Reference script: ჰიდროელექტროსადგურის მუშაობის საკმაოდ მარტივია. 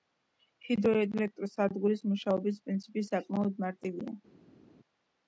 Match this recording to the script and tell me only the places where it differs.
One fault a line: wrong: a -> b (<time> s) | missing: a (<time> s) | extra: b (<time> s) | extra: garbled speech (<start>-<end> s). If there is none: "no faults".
extra: პრინციპი (2.7 s)